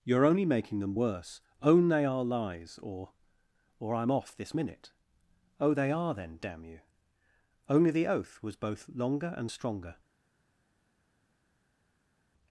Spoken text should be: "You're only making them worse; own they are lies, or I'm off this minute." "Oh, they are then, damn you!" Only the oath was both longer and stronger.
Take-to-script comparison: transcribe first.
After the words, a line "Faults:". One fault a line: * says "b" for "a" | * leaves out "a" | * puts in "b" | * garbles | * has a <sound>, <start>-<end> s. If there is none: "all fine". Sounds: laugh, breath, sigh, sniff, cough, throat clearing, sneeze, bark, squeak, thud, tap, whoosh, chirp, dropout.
"You're only making them worse; own they are lies, or or I'm off this minute." "Oh, they are then, damn you!" Only the oath was both longer and stronger.
Faults:
* puts in "or"